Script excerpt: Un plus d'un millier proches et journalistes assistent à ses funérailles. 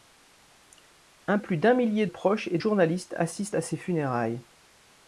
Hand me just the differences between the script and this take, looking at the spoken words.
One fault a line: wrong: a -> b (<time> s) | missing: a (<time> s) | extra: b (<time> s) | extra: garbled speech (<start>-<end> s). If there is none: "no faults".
no faults